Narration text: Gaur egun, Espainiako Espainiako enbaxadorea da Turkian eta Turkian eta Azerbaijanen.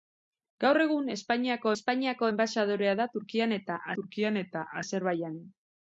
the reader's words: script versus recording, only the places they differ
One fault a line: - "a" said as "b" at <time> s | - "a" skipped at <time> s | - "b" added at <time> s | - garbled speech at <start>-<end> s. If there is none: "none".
none